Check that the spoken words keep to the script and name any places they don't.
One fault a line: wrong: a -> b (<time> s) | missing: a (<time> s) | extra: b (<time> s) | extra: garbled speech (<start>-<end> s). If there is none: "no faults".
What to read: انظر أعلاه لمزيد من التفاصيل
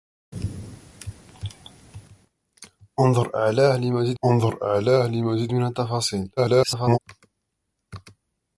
extra: انظر أعلاه لمزيد (4.2 s)
extra: garbled speech (6.4-7.0 s)